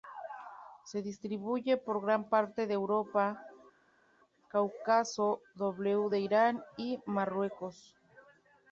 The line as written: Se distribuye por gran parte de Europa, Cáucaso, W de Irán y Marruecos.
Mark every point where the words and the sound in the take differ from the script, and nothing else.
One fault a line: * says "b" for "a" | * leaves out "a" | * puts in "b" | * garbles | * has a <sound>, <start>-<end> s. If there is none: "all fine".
all fine